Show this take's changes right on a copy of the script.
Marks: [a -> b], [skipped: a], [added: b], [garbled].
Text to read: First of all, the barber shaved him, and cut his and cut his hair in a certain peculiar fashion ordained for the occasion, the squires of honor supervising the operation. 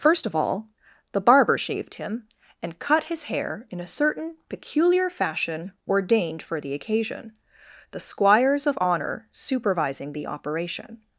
First of all, the barber shaved him, and cut his [skipped: and cut his] hair in a certain peculiar fashion ordained for the occasion, the squires of honor supervising the operation.